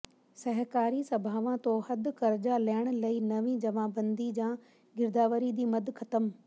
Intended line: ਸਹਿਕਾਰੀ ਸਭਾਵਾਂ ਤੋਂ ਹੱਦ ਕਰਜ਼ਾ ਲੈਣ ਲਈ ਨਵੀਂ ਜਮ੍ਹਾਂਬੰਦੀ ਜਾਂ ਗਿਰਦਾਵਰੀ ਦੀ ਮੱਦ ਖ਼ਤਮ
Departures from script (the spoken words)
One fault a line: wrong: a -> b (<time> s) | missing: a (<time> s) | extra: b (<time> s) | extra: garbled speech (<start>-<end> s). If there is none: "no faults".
no faults